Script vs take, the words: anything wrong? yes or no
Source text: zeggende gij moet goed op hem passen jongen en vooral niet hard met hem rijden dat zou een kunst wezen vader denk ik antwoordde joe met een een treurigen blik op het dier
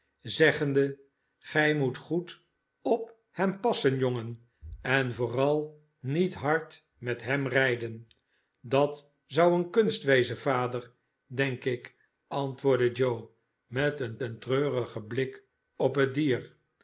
no